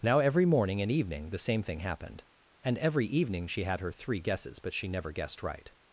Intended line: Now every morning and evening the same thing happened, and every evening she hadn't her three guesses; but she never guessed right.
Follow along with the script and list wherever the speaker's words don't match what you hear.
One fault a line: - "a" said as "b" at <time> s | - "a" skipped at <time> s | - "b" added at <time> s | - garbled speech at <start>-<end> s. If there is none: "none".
- "hadn't" said as "had" at 3.6 s